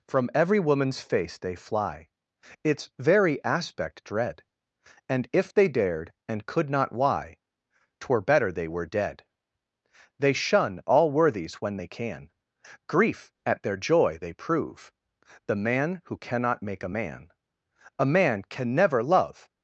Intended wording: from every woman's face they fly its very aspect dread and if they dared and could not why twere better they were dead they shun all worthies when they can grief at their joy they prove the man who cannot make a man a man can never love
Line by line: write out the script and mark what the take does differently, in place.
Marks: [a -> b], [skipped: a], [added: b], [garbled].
from every woman's face they fly its very aspect dread and if they dared and could not why twere better they were dead they shun all worthies when they can grief at their joy they prove the man who cannot make a man a man can never love